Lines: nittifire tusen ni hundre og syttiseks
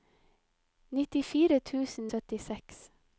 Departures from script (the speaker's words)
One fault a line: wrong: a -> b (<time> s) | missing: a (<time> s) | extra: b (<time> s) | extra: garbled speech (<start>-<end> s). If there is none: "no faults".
missing: ni hundre og (2.1 s)